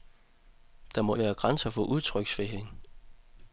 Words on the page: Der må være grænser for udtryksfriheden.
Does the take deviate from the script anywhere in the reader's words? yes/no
no